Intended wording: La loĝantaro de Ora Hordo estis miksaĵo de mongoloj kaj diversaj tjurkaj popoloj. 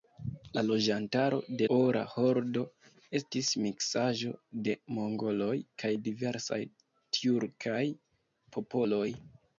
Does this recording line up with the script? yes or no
yes